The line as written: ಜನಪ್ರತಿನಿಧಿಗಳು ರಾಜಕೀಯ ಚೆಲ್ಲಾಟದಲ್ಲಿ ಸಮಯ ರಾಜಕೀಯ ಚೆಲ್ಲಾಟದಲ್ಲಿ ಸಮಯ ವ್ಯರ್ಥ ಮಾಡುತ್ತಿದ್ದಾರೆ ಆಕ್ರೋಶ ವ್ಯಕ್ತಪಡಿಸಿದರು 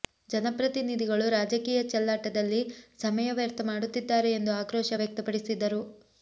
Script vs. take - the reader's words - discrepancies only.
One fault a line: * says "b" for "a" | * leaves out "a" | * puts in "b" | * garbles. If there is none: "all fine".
* leaves out "ರಾಜಕೀಯ ಚೆಲ್ಲಾಟದಲ್ಲಿ ಸಮಯ"
* puts in "ಎಂದು"